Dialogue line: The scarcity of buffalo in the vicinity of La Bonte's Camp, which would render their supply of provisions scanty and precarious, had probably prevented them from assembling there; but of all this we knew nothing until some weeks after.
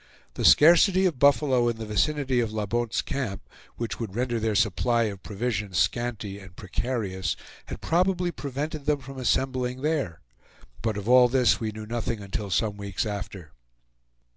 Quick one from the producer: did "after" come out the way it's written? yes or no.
yes